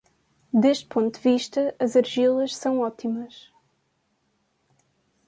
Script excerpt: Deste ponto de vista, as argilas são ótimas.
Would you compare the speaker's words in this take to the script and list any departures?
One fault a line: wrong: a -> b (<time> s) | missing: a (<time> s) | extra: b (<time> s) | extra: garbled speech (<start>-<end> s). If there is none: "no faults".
no faults